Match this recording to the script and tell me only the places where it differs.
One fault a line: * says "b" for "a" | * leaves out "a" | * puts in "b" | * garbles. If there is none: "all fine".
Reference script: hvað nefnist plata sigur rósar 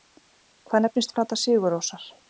all fine